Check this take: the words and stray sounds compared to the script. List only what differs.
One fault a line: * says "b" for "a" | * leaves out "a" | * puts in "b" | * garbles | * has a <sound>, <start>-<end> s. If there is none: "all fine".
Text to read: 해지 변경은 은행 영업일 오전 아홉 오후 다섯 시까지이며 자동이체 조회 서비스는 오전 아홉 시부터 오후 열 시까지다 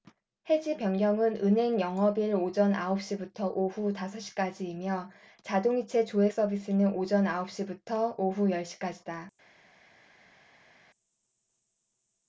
* puts in "시부터"